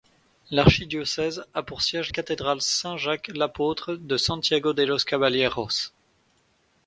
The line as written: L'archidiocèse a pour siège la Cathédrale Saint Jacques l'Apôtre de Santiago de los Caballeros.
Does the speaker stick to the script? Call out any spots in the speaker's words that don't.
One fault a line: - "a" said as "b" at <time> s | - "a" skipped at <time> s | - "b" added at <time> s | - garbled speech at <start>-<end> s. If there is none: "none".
- "la" skipped at 2.1 s